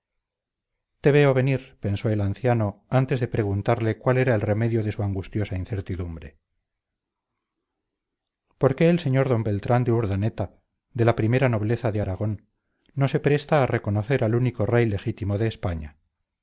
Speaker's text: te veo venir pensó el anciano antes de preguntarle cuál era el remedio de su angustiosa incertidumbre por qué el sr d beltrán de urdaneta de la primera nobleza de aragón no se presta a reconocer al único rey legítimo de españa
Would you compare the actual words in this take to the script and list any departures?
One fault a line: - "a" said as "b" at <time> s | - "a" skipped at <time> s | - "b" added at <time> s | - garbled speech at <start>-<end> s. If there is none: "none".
none